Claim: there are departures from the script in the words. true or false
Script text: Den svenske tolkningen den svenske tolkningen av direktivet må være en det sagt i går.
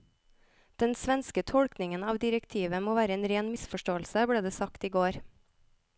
true